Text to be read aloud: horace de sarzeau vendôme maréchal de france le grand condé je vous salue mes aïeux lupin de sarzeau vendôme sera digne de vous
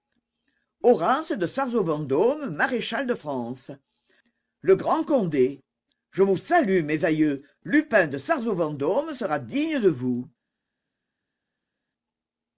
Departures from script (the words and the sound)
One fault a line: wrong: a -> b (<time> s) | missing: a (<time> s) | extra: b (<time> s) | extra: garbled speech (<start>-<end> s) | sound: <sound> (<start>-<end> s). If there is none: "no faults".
no faults